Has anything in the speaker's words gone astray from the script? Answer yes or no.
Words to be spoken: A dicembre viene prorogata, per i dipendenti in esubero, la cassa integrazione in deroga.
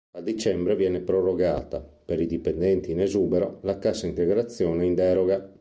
no